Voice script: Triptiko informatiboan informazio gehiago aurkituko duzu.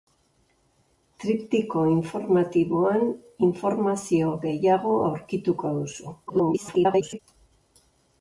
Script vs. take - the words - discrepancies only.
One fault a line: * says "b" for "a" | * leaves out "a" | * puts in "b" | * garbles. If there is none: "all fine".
* garbles